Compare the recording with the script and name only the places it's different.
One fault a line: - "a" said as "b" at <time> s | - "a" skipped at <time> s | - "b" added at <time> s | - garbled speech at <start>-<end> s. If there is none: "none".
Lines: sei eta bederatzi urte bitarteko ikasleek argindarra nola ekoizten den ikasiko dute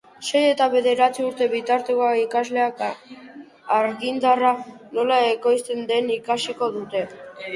none